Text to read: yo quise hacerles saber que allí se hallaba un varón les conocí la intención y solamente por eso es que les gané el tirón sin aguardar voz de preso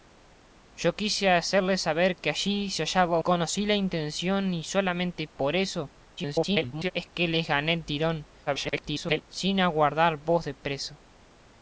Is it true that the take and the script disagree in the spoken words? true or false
true